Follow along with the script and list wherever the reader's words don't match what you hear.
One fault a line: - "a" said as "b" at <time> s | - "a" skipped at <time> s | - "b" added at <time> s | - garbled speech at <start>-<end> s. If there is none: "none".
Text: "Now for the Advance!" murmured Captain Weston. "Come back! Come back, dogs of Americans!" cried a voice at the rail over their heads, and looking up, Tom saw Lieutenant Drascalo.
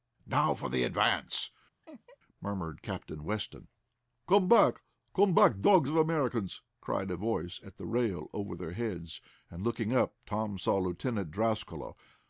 none